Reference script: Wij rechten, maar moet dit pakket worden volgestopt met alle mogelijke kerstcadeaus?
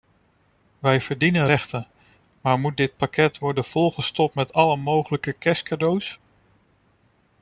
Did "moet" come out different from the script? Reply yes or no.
no